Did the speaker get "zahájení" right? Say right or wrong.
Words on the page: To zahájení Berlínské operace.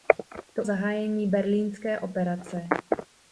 right